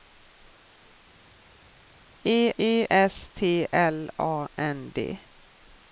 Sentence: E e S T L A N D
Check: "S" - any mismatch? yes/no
no